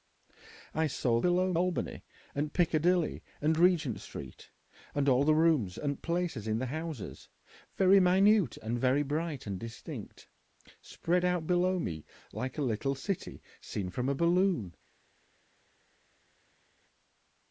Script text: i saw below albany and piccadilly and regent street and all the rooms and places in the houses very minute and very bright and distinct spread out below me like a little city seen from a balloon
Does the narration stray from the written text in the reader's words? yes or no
no